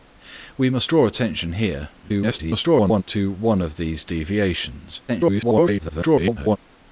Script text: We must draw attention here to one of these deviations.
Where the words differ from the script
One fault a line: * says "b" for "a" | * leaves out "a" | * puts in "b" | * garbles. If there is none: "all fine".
* garbles
* garbles